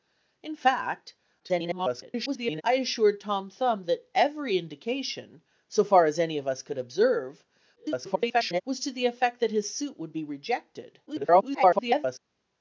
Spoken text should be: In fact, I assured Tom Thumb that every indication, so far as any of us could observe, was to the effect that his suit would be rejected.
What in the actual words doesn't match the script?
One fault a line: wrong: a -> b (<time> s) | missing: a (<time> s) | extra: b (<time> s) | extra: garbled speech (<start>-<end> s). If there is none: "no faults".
extra: garbled speech (1.4-2.6 s)
extra: garbled speech (7.8-8.6 s)
extra: garbled speech (11.1-12.2 s)